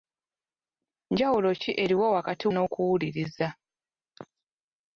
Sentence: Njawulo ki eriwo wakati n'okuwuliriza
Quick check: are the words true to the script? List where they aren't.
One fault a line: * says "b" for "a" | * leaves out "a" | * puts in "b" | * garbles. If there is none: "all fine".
all fine